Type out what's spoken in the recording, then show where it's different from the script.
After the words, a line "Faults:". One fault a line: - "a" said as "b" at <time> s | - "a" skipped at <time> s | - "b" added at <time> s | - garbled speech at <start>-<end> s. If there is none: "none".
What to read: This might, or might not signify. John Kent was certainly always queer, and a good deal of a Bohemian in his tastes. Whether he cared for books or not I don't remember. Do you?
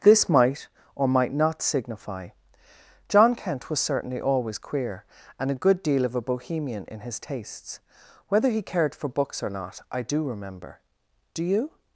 This might, or might not signify. John Kent was certainly always queer, and a good deal of a Bohemian in his tastes. Whether he cared for books or not I do remember. Do you?
Faults:
- "don't" said as "do" at 10.0 s